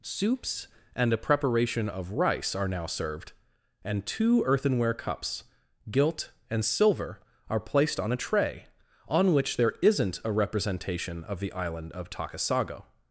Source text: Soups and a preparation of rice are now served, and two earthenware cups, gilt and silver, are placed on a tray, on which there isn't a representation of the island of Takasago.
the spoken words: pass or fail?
pass